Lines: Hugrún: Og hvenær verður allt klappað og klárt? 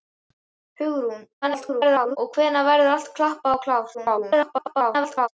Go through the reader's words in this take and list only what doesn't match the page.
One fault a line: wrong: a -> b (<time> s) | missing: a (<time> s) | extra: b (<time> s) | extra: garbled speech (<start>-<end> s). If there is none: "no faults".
extra: garbled speech (1.4-2.2 s)
extra: garbled speech (3.9-5.3 s)